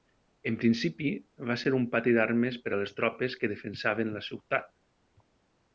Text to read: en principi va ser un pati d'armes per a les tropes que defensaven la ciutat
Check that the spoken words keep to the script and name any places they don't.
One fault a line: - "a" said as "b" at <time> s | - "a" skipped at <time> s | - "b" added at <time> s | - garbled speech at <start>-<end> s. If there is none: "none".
none